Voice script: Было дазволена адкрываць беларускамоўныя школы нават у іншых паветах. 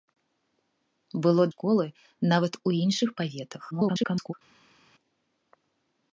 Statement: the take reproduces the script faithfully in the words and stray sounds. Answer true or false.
false